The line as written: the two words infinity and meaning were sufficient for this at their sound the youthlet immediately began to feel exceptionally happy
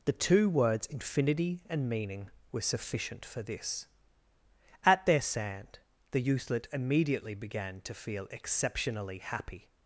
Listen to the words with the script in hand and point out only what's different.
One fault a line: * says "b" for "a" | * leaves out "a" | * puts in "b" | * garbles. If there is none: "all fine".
* says "sand" for "sound"